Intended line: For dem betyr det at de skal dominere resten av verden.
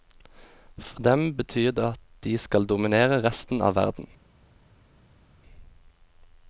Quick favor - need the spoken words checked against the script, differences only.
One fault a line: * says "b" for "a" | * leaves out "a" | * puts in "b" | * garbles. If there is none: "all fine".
all fine